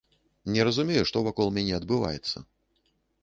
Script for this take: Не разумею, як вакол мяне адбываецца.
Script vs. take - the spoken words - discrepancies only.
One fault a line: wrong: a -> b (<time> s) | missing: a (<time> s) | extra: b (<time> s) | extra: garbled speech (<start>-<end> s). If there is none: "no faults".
wrong: як -> што (1.1 s)